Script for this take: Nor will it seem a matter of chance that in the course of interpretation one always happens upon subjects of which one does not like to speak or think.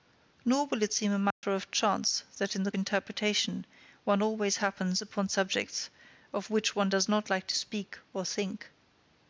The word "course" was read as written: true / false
false